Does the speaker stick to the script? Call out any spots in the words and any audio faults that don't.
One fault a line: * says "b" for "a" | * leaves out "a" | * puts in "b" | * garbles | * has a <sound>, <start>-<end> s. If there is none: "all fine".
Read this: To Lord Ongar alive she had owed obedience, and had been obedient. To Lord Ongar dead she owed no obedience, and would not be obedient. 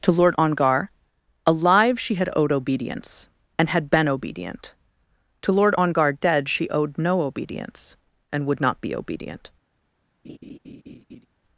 * has a laugh, 10.2-11.3 s